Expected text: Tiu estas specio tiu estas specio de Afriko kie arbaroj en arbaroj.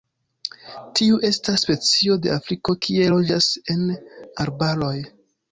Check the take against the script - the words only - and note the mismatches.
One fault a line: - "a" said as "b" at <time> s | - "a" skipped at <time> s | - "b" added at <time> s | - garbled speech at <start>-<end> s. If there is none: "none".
- "tiu estas specio" skipped at 2.2 s
- "arbaroj" said as "loĝas" at 3.1 s